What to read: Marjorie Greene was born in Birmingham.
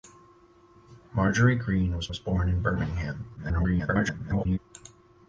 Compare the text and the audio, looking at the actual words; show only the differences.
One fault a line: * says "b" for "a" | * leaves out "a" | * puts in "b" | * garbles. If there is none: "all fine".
* puts in "was"
* garbles